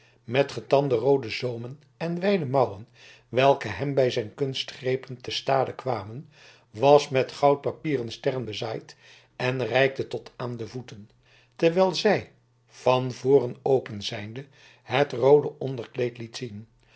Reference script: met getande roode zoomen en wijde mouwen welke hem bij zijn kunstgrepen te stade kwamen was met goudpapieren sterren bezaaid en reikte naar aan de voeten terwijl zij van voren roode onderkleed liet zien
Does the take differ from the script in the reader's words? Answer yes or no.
yes